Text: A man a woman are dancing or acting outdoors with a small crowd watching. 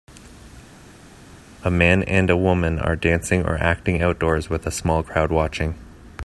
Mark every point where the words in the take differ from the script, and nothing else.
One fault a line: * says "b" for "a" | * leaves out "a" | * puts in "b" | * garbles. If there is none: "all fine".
* puts in "and"